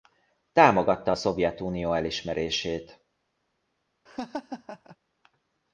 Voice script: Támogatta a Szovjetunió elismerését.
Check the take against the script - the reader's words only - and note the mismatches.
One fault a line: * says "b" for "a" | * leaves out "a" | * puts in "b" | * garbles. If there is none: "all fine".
all fine